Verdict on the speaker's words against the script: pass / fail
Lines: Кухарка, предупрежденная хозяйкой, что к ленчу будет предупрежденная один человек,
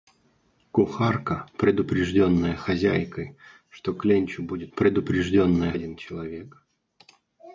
pass